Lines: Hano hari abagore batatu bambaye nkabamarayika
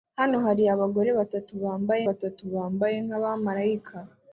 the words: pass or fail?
fail